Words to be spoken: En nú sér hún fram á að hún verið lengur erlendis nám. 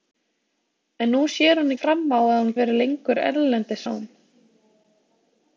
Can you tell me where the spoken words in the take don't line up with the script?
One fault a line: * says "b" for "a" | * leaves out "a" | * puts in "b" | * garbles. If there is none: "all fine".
all fine